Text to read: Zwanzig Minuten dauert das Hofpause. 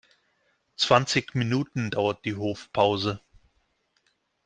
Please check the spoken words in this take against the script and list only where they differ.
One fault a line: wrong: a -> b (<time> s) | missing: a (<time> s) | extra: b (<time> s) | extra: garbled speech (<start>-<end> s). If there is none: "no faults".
wrong: das -> die (2.2 s)